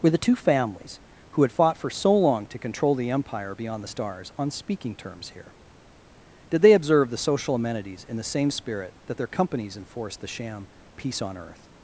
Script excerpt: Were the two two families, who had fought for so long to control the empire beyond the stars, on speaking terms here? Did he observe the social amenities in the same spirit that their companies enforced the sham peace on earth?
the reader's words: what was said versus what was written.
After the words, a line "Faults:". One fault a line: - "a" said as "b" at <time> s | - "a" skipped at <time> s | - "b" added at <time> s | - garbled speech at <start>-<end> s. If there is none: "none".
Were the two families, who had fought for so long to control the empire beyond the stars, on speaking terms here? Did they observe the social amenities in the same spirit that their companies enforced the sham peace on earth?
Faults:
- "two" skipped at 0.3 s
- "he" said as "they" at 6.6 s